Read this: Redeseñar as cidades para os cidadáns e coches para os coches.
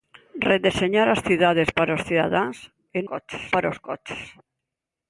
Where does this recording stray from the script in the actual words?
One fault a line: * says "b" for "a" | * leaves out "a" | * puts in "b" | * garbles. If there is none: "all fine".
all fine